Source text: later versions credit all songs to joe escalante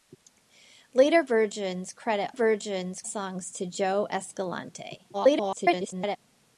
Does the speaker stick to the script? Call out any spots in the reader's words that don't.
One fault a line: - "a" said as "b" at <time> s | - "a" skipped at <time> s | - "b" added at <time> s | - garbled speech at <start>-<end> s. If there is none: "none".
- "all" said as "versions" at 2.3 s
- garbled speech at 5.1-6.2 s